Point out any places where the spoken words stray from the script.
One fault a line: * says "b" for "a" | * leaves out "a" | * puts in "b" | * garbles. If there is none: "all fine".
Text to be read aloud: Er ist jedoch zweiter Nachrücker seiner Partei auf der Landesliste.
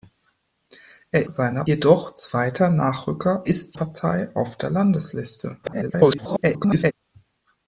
* says "seiner" for "ist"
* says "ist" for "seiner"
* garbles